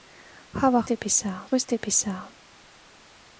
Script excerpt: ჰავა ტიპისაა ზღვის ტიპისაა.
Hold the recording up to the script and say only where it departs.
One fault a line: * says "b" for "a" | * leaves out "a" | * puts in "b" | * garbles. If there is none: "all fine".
all fine